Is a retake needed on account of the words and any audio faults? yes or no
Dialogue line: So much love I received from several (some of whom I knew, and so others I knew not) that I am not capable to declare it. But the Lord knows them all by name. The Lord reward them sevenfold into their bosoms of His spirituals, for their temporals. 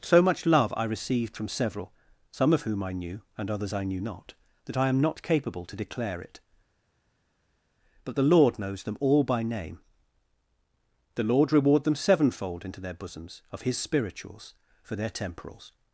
yes